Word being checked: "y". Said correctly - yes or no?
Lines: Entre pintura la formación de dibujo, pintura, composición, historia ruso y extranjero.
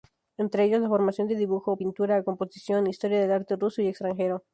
yes